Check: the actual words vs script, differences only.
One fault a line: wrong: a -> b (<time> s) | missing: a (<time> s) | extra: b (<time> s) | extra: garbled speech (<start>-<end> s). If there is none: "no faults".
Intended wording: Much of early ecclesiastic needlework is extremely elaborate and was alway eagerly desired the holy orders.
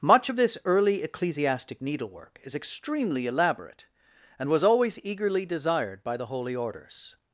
extra: this (0.4 s)
wrong: alway -> always (4.6 s)
extra: by (6.0 s)